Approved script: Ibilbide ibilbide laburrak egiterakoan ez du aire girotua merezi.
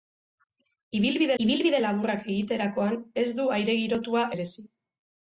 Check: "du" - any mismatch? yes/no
no